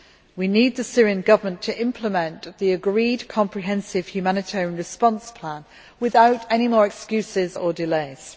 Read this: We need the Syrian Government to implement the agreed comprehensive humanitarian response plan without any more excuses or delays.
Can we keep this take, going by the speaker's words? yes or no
yes